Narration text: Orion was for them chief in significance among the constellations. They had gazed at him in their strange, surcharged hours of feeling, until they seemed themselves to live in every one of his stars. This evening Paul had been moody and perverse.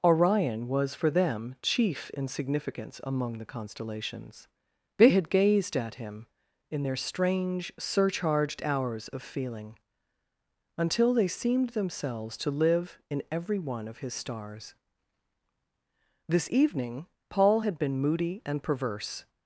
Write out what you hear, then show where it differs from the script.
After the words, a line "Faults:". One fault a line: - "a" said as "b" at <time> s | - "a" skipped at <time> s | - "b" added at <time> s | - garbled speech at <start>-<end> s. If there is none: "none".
Orion was for them chief in significance among the constellations. They had gazed at him in their strange, surcharged hours of feeling, until they seemed themselves to live in every one of his stars. This evening Paul had been moody and perverse.
Faults:
none